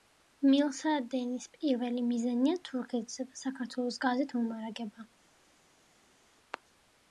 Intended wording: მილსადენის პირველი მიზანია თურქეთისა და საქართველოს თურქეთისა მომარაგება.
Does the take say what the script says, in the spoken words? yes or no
no